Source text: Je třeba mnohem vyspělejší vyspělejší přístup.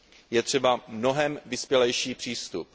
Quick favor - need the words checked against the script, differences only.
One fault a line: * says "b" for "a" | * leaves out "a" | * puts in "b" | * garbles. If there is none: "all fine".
* leaves out "vyspělejší"